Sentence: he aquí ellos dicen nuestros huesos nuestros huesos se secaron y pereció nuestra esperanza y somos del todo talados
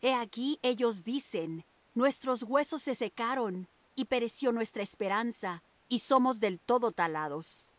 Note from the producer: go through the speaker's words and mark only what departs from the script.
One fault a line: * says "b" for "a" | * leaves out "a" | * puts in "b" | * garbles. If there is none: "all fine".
* leaves out "nuestros huesos"